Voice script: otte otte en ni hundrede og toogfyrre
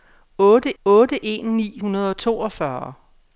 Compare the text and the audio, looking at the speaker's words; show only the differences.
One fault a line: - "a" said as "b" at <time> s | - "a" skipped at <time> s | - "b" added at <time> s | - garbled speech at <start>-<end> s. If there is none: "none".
none